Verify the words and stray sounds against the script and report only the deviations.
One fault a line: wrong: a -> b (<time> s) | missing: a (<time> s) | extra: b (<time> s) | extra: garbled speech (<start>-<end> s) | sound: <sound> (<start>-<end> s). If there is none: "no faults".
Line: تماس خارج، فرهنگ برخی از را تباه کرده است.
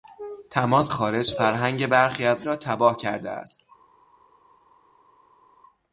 no faults